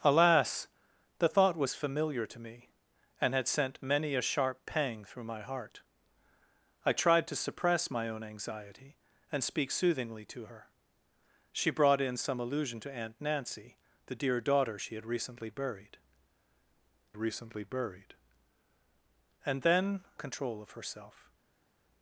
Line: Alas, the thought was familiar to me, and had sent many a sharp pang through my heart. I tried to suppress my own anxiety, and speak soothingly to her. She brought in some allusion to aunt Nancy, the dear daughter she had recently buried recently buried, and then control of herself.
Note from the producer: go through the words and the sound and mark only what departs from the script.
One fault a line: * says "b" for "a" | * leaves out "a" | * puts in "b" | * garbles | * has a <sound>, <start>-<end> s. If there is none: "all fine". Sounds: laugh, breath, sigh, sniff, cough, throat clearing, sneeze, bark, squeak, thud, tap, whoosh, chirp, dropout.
all fine